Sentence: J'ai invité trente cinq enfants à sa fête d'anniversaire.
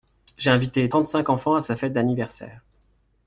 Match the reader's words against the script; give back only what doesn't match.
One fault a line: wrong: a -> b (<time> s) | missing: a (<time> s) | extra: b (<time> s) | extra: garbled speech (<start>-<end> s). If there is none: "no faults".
no faults